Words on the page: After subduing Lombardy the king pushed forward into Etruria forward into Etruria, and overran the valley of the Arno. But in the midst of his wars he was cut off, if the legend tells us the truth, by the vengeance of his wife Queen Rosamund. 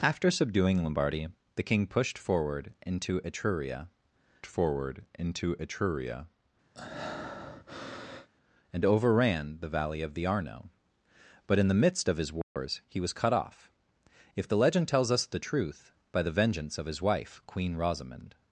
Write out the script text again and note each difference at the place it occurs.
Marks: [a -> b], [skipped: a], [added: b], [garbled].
After subduing Lombardy the king pushed forward into Etruria forward into Etruria, and overran the valley of the Arno. But in the midst of his wars he was cut off, if the legend tells us the truth, by the vengeance of his wife Queen Rosamund.